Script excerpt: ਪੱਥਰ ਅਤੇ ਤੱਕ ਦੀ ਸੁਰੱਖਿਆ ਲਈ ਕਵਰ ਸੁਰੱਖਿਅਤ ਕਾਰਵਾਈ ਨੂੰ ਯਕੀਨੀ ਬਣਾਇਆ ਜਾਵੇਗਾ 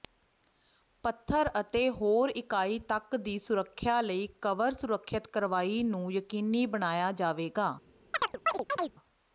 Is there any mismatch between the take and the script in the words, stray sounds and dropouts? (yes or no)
yes